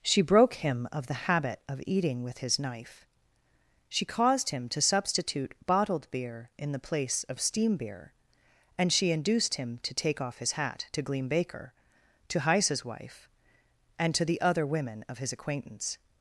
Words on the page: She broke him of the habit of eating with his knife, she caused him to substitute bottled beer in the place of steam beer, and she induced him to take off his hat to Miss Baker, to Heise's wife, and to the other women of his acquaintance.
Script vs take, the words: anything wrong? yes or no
yes